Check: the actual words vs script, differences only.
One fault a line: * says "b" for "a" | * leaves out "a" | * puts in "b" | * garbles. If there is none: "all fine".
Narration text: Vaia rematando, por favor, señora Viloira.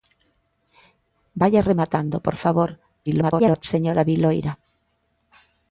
* garbles